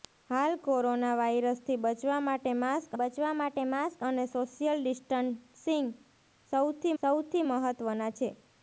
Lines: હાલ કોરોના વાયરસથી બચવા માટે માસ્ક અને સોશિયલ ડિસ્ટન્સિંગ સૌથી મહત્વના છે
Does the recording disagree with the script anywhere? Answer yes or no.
yes